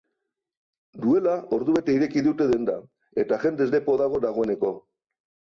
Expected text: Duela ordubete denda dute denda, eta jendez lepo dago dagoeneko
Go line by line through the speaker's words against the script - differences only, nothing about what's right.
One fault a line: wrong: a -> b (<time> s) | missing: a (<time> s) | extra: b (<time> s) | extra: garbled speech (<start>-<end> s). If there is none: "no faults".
wrong: denda -> ireki (2.0 s)